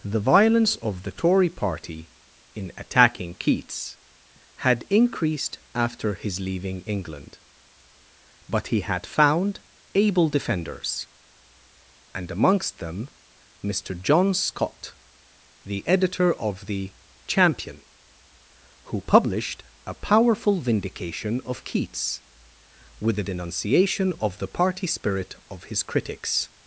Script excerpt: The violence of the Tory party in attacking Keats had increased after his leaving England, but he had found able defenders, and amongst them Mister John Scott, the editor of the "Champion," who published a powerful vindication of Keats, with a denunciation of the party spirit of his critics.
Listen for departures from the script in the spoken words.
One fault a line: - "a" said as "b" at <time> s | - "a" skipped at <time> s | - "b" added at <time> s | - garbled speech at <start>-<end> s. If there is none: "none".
none